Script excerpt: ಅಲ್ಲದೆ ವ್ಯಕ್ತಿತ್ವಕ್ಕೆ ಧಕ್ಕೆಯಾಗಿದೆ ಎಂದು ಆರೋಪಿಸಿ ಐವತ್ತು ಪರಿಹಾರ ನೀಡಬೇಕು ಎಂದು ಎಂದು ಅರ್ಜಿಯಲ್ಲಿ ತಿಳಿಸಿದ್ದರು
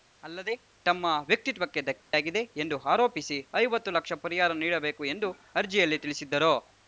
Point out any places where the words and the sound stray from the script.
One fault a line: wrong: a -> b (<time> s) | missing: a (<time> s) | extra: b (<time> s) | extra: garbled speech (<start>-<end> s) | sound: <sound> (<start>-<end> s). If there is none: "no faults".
extra: ತಮ್ಮ (0.8 s)
sound: dropout (2.0-2.1 s)
extra: ಲಕ್ಷ (3.9 s)
missing: ಎಂದು (5.3 s)